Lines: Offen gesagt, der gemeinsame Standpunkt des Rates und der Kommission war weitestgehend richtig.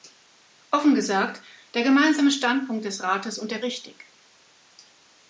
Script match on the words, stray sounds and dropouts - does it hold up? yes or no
no